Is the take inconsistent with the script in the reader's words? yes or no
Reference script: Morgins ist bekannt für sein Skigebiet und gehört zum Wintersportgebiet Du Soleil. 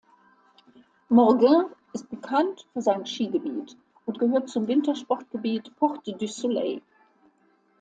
yes